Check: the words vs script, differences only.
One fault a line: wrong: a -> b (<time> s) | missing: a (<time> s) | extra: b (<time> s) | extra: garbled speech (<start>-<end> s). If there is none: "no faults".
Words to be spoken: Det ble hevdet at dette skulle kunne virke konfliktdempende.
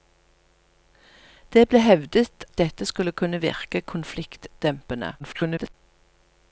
missing: at (2.5 s)
extra: garbled speech (5.2-5.7 s)